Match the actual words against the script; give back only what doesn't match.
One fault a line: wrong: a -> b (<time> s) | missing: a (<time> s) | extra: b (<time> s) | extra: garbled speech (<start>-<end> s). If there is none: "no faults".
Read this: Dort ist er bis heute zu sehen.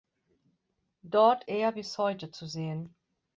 missing: ist (1.4 s)